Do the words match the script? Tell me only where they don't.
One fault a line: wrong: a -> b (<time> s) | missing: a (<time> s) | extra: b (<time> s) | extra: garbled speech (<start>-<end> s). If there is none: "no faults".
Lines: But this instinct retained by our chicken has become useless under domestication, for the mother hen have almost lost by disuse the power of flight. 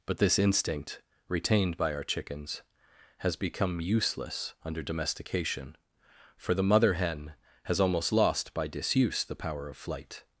wrong: chicken -> chickens (2.0 s)
wrong: have -> has (7.7 s)